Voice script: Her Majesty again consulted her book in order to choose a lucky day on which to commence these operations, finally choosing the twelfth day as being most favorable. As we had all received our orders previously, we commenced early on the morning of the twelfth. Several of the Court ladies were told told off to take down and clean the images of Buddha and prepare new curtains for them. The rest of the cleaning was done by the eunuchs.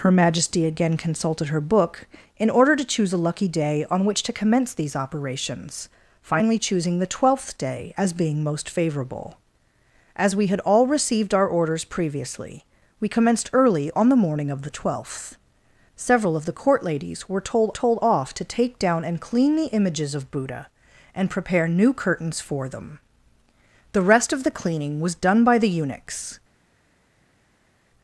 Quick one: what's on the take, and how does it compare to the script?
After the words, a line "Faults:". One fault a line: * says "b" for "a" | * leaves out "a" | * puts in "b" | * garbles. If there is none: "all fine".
Her Majesty again consulted her book in order to choose a lucky day on which to commence these operations, finally choosing the twelfth day as being most favorable. As we had all received our orders previously, we commenced early on the morning of the twelfth. Several of the Court ladies were told told off to take down and clean the images of Buddha and prepare new curtains for them. The rest of the cleaning was done by the eunuchs.
Faults:
all fine